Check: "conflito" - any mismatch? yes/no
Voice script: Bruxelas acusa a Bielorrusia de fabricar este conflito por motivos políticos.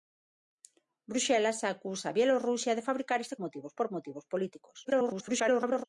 yes